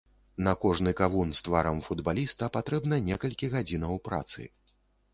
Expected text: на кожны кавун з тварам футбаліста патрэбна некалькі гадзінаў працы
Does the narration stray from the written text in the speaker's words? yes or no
no